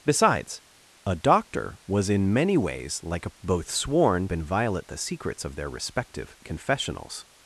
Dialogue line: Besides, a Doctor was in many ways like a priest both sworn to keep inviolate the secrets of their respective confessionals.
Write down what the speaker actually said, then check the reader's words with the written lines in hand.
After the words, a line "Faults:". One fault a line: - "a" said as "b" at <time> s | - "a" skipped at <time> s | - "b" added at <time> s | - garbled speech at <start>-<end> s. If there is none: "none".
Besides, a Doctor was in many ways like a both sworn inviolate the secrets of their respective confessionals.
Faults:
- "priest" skipped at 3.4 s
- "to keep" skipped at 4.3 s